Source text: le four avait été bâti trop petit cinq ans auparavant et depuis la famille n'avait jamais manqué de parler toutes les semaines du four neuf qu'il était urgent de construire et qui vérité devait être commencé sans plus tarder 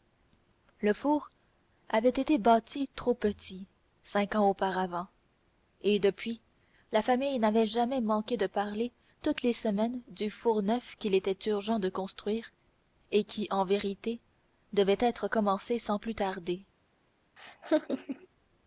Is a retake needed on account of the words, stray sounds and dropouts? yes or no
yes